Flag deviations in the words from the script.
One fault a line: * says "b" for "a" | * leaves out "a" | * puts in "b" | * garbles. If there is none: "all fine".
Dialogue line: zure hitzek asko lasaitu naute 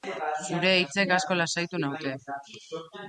all fine